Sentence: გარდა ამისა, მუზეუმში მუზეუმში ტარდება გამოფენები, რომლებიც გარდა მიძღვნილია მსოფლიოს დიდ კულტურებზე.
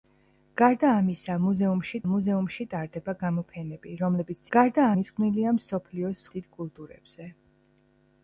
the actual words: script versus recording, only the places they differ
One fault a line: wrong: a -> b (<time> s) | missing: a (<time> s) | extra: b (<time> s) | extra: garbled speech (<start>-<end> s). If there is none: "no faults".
no faults